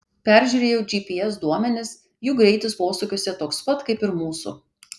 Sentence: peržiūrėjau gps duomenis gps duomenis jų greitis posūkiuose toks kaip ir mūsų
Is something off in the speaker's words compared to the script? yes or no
yes